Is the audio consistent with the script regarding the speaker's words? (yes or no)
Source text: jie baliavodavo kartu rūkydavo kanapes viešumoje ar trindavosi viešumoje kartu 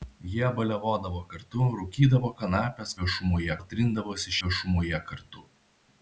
yes